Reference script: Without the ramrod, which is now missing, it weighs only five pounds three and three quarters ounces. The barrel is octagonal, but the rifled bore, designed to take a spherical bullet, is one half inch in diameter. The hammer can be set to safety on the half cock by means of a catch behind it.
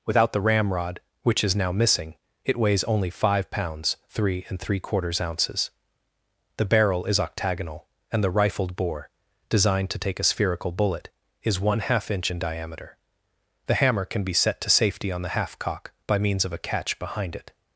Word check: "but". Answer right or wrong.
wrong